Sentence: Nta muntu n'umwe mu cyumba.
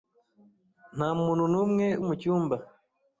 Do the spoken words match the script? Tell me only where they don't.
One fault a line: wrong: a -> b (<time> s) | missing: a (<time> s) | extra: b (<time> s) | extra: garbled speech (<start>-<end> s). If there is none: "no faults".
no faults